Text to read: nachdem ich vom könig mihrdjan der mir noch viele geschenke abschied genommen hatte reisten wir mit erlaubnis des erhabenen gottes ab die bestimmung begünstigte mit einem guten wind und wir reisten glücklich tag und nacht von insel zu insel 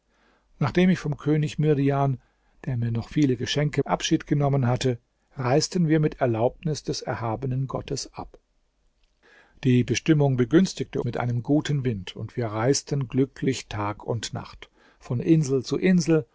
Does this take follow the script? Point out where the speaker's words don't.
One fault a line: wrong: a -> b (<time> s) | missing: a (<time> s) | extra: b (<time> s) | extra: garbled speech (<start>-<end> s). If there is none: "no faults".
no faults